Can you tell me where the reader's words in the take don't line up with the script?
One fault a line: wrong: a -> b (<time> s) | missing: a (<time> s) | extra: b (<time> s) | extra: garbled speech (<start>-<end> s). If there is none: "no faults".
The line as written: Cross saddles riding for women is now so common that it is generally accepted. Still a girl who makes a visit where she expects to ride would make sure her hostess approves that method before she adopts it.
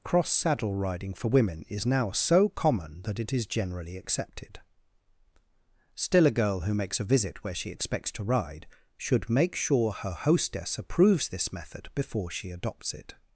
wrong: saddles -> saddle (0.3 s)
wrong: would -> should (9.0 s)
wrong: that -> this (11.3 s)